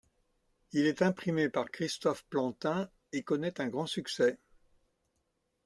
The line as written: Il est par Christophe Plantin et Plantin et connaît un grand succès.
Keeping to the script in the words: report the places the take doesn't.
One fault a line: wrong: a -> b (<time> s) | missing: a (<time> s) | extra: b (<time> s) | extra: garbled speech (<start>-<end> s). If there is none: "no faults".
extra: imprimé (1.0 s)
missing: Plantin et (3.2 s)